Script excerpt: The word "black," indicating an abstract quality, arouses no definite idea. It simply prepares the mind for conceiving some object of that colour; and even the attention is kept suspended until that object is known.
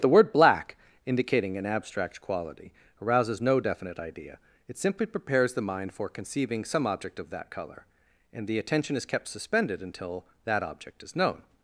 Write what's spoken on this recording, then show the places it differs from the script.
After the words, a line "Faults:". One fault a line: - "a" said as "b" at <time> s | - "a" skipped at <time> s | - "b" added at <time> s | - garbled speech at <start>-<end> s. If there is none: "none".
The word "black," indicating an abstract quality, arouses no definite idea. It simply prepares the mind for conceiving some object of that colour; and the attention is kept suspended until that object is known.
Faults:
- "even" skipped at 8.5 s